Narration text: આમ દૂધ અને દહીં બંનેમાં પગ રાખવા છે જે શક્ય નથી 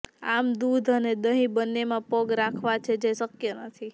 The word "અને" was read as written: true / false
true